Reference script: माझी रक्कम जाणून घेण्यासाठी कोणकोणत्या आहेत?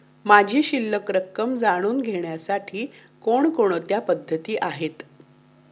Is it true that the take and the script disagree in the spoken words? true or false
true